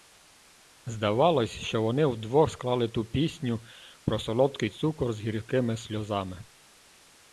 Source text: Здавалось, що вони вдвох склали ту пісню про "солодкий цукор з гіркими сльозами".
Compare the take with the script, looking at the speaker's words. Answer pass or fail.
pass